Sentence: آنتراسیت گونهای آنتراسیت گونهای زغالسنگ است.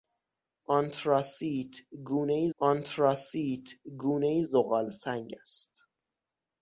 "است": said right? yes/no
yes